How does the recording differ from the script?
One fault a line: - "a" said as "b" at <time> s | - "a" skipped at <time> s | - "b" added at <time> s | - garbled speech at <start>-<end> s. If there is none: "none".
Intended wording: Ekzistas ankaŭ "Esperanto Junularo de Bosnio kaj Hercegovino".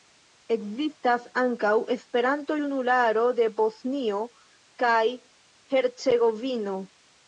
none